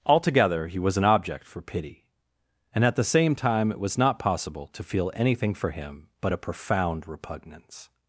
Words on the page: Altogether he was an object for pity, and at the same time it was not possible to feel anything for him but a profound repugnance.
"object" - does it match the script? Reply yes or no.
yes